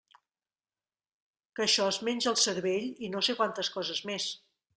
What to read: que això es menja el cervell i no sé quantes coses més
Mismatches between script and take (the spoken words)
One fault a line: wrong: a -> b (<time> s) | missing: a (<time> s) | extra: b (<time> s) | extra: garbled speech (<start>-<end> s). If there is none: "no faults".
no faults